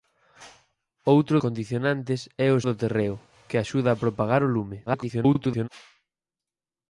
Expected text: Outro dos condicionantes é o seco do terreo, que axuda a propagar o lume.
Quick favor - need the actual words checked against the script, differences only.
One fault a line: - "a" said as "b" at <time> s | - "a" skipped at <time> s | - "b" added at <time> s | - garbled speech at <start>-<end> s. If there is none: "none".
- "dos" skipped at 1.4 s
- "seco" skipped at 2.6 s
- garbled speech at 4.9-5.7 s